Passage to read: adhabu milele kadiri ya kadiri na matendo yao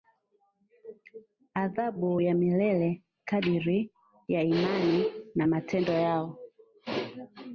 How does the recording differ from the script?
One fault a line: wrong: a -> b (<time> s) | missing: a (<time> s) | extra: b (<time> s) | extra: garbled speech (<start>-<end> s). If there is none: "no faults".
extra: ya (2.2 s)
wrong: kadiri -> imani (4.4 s)